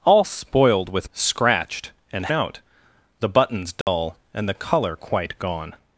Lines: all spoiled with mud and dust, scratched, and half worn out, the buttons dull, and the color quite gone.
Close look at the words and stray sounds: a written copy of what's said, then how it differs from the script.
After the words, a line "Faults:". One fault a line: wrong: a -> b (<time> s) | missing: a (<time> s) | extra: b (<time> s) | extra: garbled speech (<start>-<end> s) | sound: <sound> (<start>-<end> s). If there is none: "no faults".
all spoiled with scratched, and out, the buttons dull, and the color quite gone.
Faults:
missing: mud and dust (1.1 s)
missing: half worn (2.3 s)
sound: dropout (3.8-3.9 s)